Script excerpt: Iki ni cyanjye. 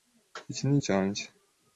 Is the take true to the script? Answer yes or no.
yes